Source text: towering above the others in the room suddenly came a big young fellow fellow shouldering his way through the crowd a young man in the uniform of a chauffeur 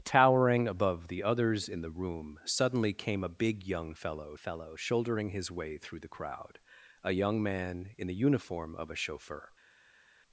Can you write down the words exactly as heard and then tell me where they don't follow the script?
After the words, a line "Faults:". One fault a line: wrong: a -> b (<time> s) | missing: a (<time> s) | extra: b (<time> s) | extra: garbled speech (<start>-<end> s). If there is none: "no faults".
towering above the others in the room suddenly came a big young fellow fellow shouldering his way through the crowd a young man in the uniform of a chauffeur
Faults:
no faults